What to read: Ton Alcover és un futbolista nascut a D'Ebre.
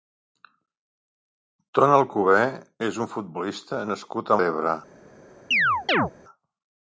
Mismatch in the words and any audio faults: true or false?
true